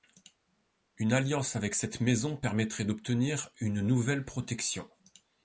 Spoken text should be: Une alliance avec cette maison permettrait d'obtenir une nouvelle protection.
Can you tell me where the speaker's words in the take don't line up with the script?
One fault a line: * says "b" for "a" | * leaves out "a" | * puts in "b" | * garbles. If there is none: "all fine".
all fine